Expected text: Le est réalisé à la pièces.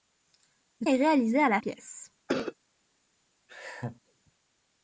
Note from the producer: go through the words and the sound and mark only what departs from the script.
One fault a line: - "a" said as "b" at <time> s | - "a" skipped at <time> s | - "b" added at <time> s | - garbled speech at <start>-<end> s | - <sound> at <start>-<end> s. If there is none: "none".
- cough at 2.3-2.5 s
- laugh at 3.5-4.0 s